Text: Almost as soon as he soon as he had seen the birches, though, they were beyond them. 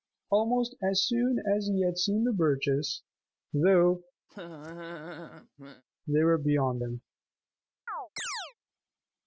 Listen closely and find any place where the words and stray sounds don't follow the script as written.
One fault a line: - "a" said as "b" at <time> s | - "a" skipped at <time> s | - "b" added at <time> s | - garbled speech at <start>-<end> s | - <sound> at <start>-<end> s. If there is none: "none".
- "soon as he" skipped at 1.8 s
- laugh at 4.3-5.8 s
- chirp at 7.9-8.5 s